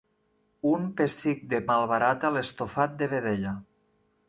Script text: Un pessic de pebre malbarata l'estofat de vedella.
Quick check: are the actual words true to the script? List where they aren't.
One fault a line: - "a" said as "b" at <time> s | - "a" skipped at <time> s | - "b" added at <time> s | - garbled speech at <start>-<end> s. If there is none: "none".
- "pebre" skipped at 1.6 s